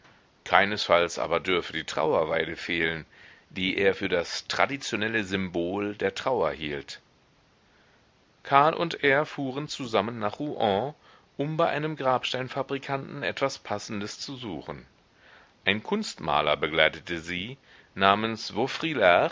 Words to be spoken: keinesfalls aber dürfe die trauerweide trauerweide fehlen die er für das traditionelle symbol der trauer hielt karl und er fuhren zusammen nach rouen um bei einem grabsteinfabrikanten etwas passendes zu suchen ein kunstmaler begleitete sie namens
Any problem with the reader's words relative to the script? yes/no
yes